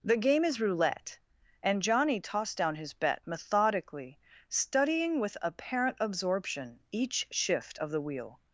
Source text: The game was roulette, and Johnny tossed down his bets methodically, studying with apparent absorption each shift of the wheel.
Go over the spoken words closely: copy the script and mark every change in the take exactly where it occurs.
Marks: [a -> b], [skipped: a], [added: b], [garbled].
The game [was -> is] roulette, and Johnny tossed down his [bets -> bet] methodically, studying with apparent absorption each shift of the wheel.